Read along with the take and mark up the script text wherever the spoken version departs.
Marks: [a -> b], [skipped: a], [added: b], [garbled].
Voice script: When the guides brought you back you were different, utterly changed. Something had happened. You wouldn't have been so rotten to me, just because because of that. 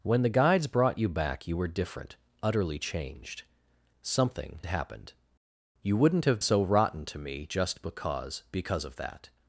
When the guides brought you back you were different, utterly changed. Something [skipped: had] happened. You wouldn't have [skipped: been] so rotten to me, just because because of that.